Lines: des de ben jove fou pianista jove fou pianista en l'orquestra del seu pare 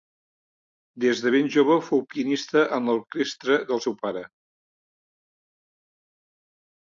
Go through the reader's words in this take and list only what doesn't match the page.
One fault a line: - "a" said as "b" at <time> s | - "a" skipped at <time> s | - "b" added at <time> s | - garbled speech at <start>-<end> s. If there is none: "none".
- "jove fou pianista" skipped at 2.6 s